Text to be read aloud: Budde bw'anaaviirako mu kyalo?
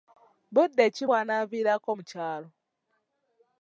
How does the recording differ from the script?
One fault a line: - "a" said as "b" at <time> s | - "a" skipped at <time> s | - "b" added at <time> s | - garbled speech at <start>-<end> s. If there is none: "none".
- "ki" added at 0.9 s